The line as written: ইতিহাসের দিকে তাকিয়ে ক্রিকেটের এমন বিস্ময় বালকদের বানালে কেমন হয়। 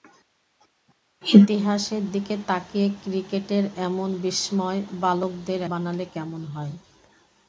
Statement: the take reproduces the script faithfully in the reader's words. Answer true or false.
true